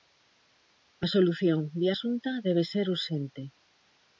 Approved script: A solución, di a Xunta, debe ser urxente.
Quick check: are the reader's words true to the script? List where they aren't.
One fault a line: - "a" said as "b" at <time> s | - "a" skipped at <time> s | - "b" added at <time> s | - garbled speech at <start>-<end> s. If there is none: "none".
none